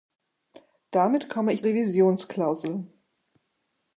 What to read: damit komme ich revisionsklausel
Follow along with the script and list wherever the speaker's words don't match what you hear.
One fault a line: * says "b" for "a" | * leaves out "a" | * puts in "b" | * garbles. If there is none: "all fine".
all fine